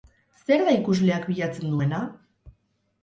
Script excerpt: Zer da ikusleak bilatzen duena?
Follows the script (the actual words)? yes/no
yes